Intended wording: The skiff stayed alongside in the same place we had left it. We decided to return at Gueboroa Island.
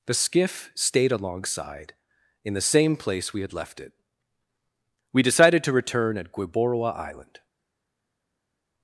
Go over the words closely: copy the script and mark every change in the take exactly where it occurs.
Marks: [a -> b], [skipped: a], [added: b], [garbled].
The skiff stayed alongside in the same place we had left it. We decided to return at Gueboroa Island.